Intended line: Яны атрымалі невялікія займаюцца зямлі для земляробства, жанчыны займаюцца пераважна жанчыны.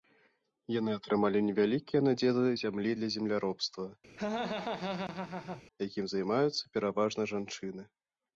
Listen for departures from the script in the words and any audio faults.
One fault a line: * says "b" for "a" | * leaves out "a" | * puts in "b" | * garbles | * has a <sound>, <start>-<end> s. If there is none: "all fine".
* says "надзелы" for "займаюцца"
* has a laugh, 4.2-5.6 s
* says "якім" for "жанчыны"